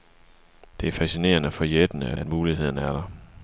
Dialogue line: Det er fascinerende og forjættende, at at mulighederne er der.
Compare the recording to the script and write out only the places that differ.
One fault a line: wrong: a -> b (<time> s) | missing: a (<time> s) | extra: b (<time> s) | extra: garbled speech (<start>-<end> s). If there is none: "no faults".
no faults